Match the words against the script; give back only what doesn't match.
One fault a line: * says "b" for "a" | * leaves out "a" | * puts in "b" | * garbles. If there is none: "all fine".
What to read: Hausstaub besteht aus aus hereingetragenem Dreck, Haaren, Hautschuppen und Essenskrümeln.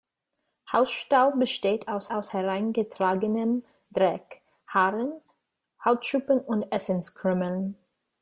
all fine